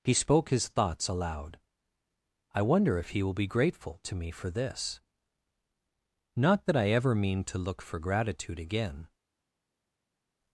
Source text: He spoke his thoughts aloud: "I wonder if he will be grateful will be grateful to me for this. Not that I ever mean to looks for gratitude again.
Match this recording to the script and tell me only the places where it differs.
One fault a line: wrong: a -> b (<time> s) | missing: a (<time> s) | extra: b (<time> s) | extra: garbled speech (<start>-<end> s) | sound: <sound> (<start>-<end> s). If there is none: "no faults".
missing: will be grateful (4.0 s)
wrong: looks -> look (7.6 s)